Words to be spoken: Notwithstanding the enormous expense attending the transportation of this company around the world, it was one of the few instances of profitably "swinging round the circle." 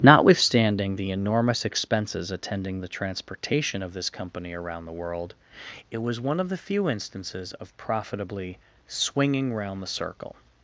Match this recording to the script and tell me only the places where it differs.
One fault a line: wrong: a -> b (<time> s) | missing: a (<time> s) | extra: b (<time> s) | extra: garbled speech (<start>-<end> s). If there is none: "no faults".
wrong: expense -> expenses (1.7 s)